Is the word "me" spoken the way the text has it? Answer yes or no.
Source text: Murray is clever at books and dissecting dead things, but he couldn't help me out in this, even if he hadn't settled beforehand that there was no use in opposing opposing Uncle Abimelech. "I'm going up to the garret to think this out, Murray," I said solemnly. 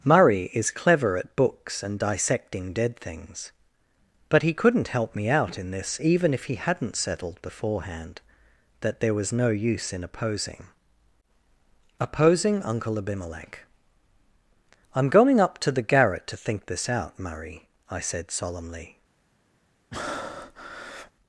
yes